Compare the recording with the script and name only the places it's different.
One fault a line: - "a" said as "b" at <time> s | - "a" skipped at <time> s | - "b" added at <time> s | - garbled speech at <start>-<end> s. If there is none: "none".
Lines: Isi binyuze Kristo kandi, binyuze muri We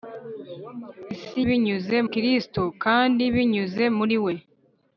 none